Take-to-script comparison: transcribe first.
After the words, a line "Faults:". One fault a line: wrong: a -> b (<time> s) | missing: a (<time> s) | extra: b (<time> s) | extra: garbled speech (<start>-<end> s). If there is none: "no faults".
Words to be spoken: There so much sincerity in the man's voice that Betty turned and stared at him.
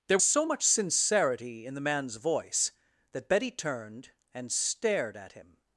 There so much sincerity in the man's voice that Betty turned and stared at him.
Faults:
no faults